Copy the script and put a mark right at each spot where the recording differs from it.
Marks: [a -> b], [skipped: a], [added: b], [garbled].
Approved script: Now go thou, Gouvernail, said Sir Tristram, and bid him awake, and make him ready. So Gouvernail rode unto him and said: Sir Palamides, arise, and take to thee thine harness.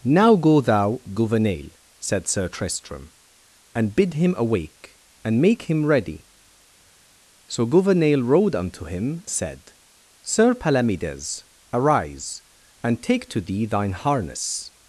Now go thou, Gouvernail, said Sir Tristram, and bid him awake, and make him ready. So Gouvernail rode unto him [skipped: and] said: Sir Palamides, arise, and take to thee thine harness.